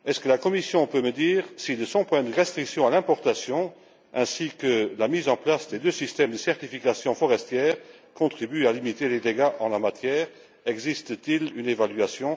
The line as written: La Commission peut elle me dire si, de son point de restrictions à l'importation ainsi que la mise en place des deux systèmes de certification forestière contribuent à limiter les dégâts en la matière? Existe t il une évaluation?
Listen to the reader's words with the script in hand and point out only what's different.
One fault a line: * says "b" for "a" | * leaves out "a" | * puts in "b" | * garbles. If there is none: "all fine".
all fine